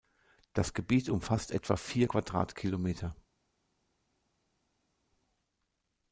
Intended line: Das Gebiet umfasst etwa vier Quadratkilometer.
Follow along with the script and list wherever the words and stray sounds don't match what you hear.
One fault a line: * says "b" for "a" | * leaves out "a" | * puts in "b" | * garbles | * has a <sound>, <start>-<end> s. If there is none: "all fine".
all fine